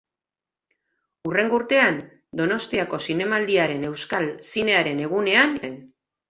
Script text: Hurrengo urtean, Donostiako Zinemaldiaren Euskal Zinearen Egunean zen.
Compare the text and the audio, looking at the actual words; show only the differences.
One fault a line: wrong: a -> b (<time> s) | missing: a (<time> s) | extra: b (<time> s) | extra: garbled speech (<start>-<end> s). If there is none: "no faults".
no faults